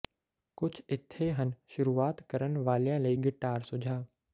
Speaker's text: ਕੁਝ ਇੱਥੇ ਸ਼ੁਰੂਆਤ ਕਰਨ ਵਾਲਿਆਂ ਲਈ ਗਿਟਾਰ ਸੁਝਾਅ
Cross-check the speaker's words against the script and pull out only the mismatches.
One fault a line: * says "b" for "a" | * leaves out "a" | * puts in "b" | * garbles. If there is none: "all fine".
* puts in "ਹਨ"